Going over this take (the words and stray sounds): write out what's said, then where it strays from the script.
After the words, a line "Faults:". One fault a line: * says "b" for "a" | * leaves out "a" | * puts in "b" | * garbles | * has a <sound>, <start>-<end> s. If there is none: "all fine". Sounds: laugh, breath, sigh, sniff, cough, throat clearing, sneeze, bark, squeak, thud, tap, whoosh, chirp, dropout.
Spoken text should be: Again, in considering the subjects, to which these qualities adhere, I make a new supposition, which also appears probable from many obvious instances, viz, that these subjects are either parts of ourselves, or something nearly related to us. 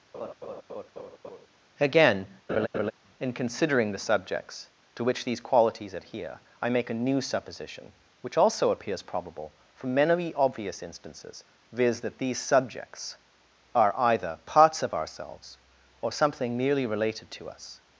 Again, in considering the subjects, to which these qualities adhere, I make a new supposition, which also appears probable from many obvious instances, viz, that these subjects are either parts of ourselves, or something merely related to us.
Faults:
* has a laugh, 0.1-1.5 s
* has a laugh, 2.5-2.9 s
* says "merely" for "nearly"